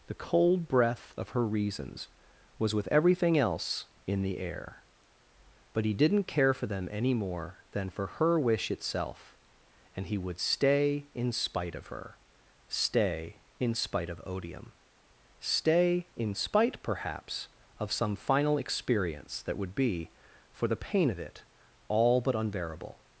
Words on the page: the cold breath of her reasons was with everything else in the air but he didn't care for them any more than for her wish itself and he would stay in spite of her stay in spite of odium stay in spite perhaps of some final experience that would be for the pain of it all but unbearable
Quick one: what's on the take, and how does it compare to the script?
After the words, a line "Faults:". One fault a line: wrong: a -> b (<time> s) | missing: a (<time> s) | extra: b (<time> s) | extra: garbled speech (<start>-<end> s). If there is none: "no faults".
the cold breath of her reasons was with everything else in the air but he didn't care for them any more than for her wish itself and he would stay in spite of her stay in spite of odium stay in spite perhaps of some final experience that would be for the pain of it all but unbearable
Faults:
no faults